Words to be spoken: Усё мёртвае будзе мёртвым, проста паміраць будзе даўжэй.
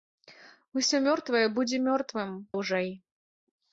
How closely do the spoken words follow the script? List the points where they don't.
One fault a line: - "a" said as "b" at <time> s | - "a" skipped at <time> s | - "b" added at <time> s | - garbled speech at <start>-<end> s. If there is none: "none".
- "проста паміраць будзе" skipped at 2.3 s